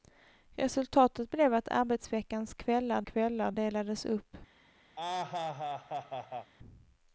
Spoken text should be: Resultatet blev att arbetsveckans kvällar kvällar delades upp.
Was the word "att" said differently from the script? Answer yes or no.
no